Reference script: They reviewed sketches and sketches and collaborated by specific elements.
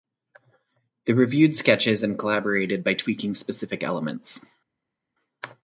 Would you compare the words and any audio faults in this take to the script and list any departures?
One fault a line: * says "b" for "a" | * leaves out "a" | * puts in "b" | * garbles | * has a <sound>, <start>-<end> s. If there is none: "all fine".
* leaves out "sketches and"
* puts in "tweaking"